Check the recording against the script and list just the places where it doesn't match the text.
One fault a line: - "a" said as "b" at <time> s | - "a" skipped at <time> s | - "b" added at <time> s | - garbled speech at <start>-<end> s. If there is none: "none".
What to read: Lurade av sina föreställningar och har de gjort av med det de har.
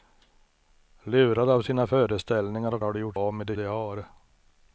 none